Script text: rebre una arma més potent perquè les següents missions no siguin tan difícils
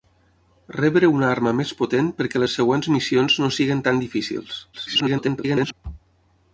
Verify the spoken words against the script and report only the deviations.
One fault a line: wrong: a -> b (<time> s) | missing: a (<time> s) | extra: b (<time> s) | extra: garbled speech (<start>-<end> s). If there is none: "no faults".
extra: garbled speech (4.7-5.7 s)